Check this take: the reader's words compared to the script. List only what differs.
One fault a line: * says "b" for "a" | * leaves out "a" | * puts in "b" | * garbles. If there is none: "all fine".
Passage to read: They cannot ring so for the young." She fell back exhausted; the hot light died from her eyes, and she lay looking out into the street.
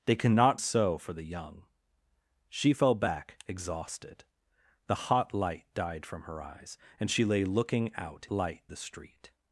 * leaves out "ring"
* says "light" for "into"